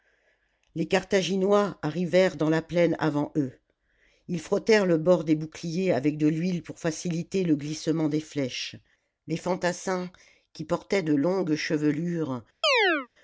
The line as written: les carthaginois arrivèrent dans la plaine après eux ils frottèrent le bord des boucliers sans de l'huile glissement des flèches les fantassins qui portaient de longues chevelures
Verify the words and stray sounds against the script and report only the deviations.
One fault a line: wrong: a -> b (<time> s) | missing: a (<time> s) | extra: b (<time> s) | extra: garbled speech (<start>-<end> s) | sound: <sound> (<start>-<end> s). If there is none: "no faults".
wrong: après -> avant (3.0 s)
wrong: sans -> avec (5.9 s)
extra: pour faciliter le (6.6 s)
sound: chirp (12.6-13.1 s)